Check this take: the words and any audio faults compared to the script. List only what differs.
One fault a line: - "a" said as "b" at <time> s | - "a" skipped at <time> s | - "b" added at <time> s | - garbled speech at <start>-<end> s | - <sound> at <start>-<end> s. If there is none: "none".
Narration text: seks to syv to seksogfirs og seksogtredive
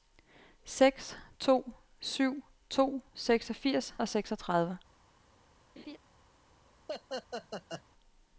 - laugh at 5.8-6.0 s
- laugh at 6.9-7.8 s